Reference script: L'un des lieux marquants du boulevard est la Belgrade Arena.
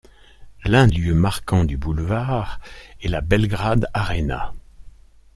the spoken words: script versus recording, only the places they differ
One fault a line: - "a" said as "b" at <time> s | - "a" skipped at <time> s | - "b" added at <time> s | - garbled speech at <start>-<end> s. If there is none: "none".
- "des" skipped at 0.9 s